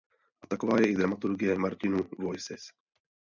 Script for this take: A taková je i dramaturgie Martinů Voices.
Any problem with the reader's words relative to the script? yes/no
no